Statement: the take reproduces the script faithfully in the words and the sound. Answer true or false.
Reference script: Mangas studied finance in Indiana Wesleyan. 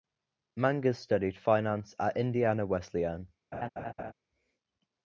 false